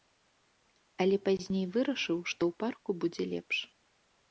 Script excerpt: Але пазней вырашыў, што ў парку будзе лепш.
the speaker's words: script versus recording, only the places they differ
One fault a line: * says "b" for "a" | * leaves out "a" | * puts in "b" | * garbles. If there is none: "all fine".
all fine